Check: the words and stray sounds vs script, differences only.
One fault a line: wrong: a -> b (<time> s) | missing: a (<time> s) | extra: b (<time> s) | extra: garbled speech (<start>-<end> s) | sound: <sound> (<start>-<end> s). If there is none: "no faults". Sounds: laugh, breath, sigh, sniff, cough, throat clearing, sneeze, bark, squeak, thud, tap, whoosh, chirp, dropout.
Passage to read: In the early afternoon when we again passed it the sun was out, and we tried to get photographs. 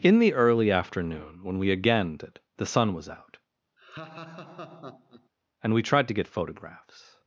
missing: passed (2.2 s)
sound: laugh (3.8-5.3 s)